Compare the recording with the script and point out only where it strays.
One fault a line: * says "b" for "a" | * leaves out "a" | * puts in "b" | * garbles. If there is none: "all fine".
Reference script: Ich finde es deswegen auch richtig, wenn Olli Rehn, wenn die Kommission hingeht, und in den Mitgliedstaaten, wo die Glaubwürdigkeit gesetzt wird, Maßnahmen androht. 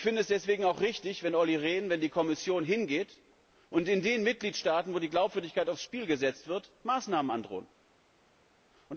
* puts in "aufs Spiel"